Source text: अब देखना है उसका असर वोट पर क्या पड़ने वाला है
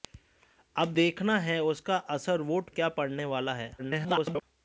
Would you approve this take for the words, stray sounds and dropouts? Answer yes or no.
no